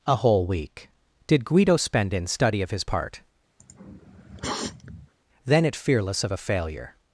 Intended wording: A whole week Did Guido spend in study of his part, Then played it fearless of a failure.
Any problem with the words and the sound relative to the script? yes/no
yes